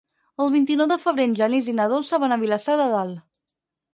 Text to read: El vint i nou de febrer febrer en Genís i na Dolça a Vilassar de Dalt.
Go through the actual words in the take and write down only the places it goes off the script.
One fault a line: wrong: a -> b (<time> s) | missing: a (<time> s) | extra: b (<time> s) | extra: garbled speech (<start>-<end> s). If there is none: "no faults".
missing: febrer (1.3 s)
extra: van (2.2 s)